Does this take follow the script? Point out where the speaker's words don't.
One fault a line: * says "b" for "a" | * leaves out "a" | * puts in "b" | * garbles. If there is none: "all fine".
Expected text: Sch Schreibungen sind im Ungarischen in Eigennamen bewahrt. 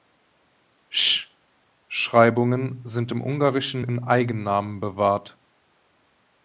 all fine